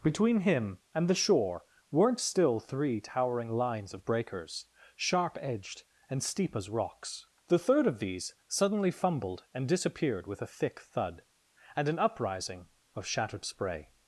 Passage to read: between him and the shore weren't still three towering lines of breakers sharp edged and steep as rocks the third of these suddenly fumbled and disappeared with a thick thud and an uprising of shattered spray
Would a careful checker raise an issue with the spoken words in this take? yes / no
no